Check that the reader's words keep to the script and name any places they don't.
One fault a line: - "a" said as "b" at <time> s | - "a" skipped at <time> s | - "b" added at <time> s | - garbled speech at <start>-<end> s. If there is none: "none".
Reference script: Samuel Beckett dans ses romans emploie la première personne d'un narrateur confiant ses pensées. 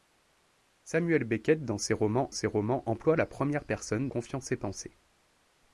- "ses romans" added at 2.3 s
- "d'un narrateur" skipped at 4.1 s